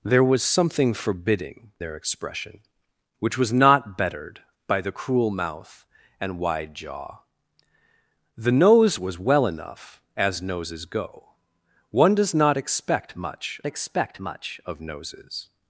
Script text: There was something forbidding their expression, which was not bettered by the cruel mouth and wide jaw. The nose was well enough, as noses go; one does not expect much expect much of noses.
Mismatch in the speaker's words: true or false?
false